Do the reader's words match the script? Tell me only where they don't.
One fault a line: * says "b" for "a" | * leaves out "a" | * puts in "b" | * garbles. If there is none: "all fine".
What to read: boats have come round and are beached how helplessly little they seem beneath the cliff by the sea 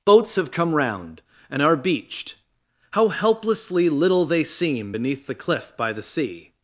all fine